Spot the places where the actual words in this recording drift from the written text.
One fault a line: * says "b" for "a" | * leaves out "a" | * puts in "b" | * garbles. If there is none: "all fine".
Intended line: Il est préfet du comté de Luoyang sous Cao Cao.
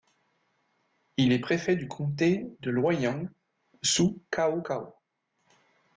all fine